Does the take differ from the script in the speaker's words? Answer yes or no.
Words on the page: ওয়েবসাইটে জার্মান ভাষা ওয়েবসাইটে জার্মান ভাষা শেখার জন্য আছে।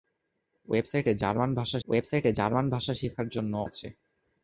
no